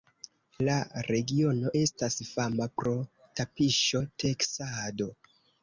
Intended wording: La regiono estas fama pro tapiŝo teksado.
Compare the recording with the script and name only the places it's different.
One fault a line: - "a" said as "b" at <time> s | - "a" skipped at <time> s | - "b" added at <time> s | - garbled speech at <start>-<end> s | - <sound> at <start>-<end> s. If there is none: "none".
none